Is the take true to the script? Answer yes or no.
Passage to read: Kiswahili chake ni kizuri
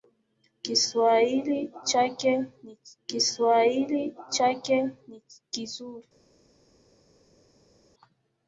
no